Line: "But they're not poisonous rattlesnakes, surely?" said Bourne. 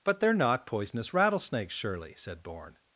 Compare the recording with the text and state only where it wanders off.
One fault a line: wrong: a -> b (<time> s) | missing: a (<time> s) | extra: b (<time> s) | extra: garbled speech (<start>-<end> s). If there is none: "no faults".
no faults